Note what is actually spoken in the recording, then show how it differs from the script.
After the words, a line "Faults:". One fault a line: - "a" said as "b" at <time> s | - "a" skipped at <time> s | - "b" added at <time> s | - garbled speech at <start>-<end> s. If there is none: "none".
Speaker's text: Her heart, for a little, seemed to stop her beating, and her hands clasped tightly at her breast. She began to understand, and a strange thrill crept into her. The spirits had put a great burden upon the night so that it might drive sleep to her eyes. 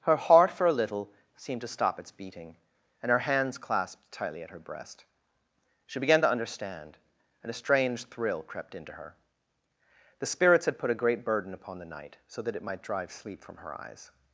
Her heart, for a little, seemed to stop its beating, and her hands clasped tightly at her breast. She began to understand, and a strange thrill crept into her. The spirits had put a great burden upon the night so that it might drive sleep from her eyes.
Faults:
- "her" said as "its" at 2.0 s
- "to" said as "from" at 13.4 s